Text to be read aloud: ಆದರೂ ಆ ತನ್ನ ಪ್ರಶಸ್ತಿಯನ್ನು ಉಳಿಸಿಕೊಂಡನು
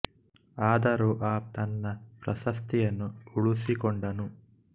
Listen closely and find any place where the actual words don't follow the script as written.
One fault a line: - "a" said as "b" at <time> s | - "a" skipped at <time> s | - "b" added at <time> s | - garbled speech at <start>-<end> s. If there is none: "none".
none